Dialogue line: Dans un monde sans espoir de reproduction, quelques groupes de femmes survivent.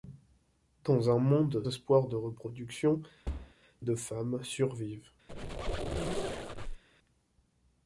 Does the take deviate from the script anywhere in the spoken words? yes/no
yes